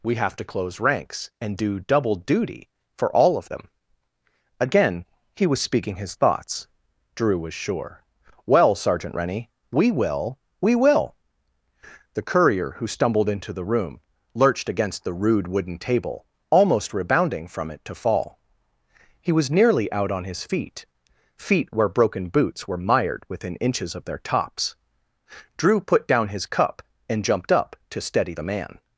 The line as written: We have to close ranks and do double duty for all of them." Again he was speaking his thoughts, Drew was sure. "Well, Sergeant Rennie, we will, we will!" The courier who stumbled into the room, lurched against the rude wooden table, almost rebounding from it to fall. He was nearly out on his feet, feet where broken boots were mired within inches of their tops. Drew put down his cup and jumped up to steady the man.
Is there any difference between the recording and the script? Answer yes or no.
no